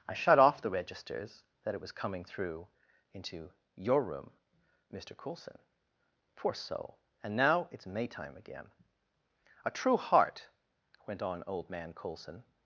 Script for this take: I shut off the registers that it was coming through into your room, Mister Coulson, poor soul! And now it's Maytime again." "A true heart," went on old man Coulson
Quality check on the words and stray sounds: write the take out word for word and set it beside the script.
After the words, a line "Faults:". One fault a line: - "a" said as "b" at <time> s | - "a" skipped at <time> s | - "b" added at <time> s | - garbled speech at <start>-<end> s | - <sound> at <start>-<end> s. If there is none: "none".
I shut off the registers that it was coming through into your room, Mister Coulson, poor soul! And now it's Maytime again." "A true heart," went on old man Coulson
Faults:
none